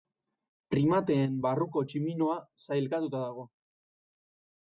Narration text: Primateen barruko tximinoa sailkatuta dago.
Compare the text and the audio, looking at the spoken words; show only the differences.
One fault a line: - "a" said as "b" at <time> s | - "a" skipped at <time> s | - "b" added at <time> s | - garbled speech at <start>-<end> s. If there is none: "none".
none